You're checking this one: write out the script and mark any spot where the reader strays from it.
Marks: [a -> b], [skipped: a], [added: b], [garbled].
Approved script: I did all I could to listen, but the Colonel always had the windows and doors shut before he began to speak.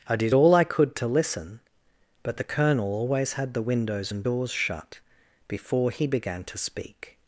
I did all I could to listen, but the Colonel always had the windows and doors shut before he began to speak.